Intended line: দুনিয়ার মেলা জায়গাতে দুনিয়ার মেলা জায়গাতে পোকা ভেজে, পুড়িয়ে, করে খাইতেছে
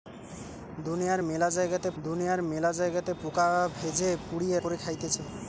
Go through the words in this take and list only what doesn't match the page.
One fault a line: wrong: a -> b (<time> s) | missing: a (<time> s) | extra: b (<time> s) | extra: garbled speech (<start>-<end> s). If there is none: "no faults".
no faults